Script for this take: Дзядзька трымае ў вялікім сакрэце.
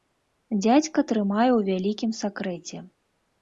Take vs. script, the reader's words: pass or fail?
pass